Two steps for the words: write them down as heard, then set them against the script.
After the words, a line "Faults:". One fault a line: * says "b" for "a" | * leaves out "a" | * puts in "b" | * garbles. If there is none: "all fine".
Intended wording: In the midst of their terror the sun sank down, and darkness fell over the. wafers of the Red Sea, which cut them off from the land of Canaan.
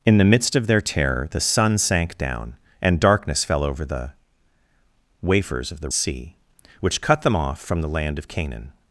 In the midst of their terror the sun sank down, and darkness fell over the. wafers of the Sea, which cut them off from the land of Canaan.
Faults:
* leaves out "Red"